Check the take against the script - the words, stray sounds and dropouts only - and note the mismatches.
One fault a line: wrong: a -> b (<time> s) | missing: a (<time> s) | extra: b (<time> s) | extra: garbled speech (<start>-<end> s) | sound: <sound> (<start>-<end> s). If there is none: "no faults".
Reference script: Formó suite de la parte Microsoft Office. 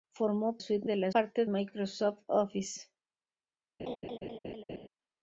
sound: laugh (3.8-4.9 s)